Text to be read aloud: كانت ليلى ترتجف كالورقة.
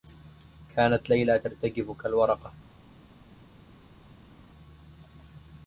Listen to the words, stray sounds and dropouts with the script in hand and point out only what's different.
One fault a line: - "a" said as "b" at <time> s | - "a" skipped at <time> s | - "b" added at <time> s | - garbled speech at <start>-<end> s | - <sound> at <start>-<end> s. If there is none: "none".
none